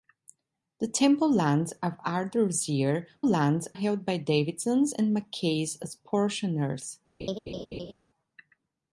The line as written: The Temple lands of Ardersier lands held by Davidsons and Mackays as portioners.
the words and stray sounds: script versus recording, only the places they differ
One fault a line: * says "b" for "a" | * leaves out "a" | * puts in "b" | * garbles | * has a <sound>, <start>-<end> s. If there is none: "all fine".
* has a laugh, 7.2-7.9 s